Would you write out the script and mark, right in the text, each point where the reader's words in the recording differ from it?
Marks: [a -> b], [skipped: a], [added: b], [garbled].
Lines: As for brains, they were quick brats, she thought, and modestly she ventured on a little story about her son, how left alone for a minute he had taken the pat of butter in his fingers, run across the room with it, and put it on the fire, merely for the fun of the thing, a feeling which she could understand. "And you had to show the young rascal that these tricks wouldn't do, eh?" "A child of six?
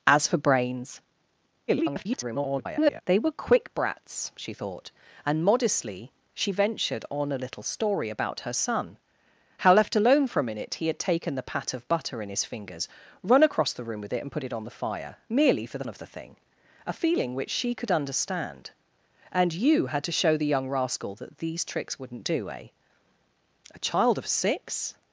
As for brains, [garbled] they were quick brats, she thought, and modestly she ventured on a little story about her son, how left alone for a minute he had taken the pat of butter in his fingers, run across the room with it, and put it on the fire, merely for the [skipped: fun] of the thing, a feeling which she could understand. "And you had to show the young rascal that these tricks wouldn't do, eh?" "A child of six?